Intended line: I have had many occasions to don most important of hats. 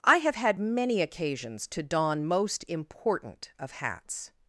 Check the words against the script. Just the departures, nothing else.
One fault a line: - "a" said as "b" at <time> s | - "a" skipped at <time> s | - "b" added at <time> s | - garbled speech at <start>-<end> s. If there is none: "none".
none